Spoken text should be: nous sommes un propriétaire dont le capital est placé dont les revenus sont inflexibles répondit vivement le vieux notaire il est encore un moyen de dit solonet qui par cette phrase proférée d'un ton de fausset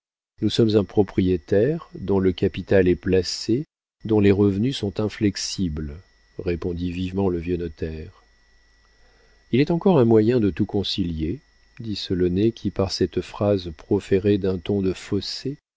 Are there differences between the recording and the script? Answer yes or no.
yes